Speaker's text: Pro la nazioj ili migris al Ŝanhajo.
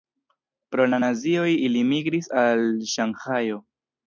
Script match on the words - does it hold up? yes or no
yes